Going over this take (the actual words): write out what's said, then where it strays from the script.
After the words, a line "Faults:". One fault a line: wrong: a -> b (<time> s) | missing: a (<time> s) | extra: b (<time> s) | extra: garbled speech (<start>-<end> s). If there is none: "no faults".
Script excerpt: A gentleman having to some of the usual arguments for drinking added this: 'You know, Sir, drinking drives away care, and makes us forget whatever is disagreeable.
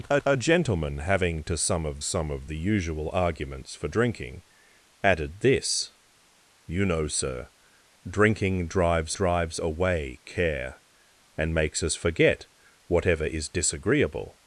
A a gentleman having to some of some of the usual arguments for drinking added this: 'You know, Sir, drinking drives drives away care, and makes us forget whatever is disagreeable.
Faults:
extra: a (0.2 s)
extra: some of (2.0 s)
extra: drives (9.1 s)